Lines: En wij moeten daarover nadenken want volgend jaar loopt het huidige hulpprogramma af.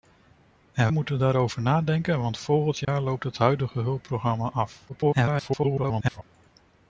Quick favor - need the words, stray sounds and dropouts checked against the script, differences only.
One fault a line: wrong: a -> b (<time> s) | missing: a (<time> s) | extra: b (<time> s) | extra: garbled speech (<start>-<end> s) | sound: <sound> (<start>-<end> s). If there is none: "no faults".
missing: wij (0.9 s)
sound: dropout (2.8-2.9 s)
extra: garbled speech (4.9-6.2 s)